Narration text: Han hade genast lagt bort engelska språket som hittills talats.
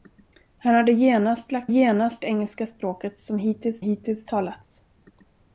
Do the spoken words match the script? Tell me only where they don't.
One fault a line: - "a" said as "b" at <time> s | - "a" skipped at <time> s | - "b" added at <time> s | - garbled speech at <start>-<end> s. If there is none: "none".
- "bort" said as "genast" at 1.7 s
- "hittills" added at 3.8 s